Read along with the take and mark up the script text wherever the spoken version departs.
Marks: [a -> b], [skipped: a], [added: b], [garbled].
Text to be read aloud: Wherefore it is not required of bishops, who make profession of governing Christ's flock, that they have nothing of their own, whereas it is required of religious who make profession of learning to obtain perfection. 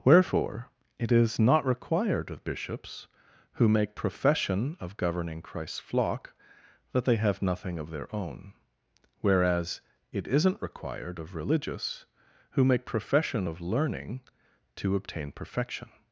Wherefore it is not required of bishops, who make profession of governing Christ's flock, that they have nothing of their own, whereas it [is -> isn't] required of religious who make profession of learning to obtain perfection.